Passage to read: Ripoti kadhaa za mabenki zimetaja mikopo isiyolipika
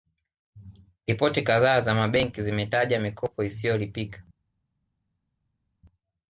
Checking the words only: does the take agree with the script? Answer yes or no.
yes